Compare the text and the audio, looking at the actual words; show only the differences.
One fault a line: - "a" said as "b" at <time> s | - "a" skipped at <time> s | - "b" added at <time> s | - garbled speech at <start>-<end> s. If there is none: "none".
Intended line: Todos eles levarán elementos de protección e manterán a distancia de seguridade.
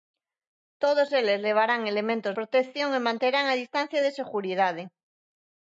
- "de" skipped at 2.3 s